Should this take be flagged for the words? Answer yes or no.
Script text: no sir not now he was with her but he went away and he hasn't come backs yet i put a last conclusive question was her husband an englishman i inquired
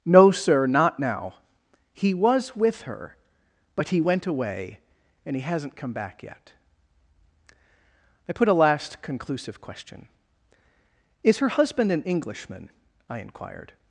yes